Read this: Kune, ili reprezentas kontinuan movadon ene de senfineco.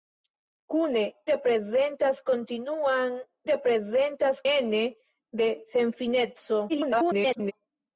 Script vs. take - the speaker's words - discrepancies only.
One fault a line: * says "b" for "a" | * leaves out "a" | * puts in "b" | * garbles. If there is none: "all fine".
* leaves out "ili"
* says "reprezentas" for "movadon"
* garbles